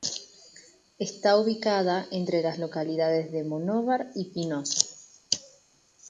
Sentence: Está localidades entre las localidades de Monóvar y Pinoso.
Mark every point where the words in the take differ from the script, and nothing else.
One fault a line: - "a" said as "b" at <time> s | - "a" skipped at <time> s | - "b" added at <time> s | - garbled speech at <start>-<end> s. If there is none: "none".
- "localidades" said as "ubicada" at 1.4 s